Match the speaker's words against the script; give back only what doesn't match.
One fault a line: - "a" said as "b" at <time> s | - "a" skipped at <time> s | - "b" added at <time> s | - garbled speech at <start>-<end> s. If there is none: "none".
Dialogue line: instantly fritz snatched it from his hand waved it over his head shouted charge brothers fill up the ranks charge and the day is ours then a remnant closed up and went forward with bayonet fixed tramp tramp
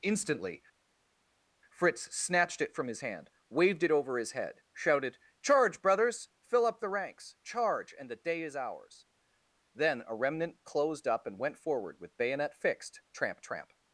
none